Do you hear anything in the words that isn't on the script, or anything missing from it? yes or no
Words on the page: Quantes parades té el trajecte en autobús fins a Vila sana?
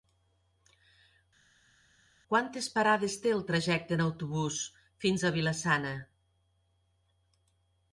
no